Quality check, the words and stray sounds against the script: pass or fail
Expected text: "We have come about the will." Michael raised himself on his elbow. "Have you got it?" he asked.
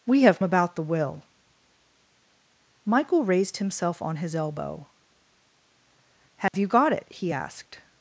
fail